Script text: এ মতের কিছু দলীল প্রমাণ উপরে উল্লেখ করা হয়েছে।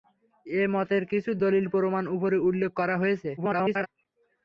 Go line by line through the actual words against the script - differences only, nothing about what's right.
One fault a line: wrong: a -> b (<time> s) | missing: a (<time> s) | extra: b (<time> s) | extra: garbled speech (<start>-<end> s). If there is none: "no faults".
extra: garbled speech (3.4-3.9 s)